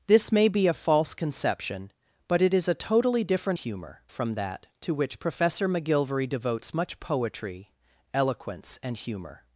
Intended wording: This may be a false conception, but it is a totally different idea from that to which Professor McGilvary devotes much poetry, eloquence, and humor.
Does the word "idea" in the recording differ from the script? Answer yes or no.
yes